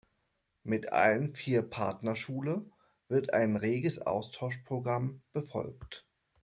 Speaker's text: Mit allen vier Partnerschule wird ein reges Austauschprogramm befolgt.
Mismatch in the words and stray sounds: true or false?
false